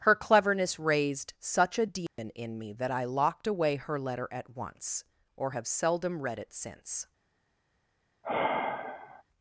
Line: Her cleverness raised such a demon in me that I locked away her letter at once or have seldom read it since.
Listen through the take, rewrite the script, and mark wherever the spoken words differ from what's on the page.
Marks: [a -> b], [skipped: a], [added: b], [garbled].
Her cleverness raised such a demon in me that I locked away her letter at once or have seldom read it since.